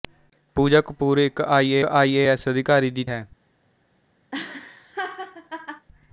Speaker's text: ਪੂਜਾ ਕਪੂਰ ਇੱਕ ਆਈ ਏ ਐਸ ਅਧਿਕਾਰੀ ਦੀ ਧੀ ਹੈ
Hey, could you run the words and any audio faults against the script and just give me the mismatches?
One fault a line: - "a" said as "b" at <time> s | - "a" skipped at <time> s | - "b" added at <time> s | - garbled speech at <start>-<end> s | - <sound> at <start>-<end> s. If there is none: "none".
- "ਆਈ ਏ" added at 1.8 s
- "ਧੀ" skipped at 3.0 s
- laugh at 4.3-5.9 s